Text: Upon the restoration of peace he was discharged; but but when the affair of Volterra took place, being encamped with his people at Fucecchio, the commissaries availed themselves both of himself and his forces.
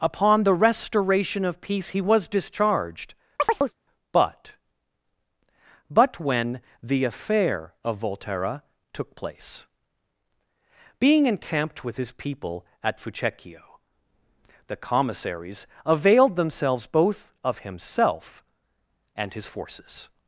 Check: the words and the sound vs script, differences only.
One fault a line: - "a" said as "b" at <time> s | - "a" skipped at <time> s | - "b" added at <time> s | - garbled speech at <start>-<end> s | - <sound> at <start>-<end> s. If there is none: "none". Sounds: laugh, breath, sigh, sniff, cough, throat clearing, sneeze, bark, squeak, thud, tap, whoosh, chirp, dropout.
- chirp at 3.4-3.7 s